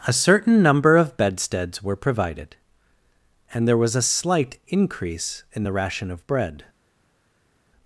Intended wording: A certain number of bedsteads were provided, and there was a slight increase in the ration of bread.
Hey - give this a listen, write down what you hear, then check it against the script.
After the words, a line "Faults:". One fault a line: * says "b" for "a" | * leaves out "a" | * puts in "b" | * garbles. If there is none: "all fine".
A certain number of bedsteads were provided, and there was a slight increase in the ration of bread.
Faults:
all fine